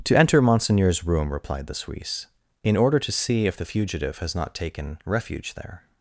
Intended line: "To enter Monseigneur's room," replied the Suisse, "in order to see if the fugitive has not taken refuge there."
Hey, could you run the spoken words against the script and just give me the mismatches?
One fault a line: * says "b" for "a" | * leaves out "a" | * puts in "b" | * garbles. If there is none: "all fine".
all fine